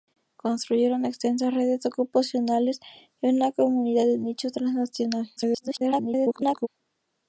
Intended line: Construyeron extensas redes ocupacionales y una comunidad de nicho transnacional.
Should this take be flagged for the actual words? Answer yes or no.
yes